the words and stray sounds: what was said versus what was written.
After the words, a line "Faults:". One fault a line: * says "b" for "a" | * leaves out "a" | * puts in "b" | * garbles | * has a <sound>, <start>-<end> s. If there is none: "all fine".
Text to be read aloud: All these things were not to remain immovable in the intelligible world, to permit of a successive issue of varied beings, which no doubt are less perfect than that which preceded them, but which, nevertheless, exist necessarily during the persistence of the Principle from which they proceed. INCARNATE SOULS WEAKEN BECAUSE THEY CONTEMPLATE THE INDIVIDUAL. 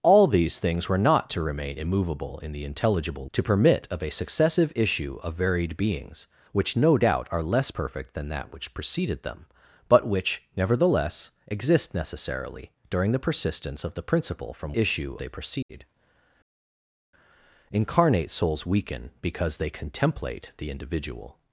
All these things were not to remain immovable in the intelligible to permit of a successive issue of varied beings, which no doubt are less perfect than that which preceded them, but which, nevertheless, exist necessarily during the persistence of the Principle from issue they proceed. INCARNATE SOULS WEAKEN BECAUSE THEY CONTEMPLATE THE INDIVIDUAL.
Faults:
* leaves out "world"
* says "issue" for "which"
* has a dropout, 15.6-15.7 s